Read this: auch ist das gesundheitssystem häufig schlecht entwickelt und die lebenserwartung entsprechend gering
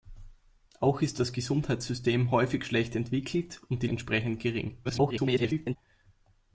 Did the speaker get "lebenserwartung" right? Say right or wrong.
wrong